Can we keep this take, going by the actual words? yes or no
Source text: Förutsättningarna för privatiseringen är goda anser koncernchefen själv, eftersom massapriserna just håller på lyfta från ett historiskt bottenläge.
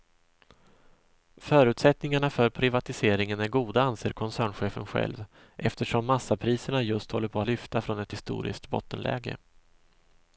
yes